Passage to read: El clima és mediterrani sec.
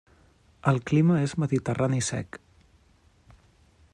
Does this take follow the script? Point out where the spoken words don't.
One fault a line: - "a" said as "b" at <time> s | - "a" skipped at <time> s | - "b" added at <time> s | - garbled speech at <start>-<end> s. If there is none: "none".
none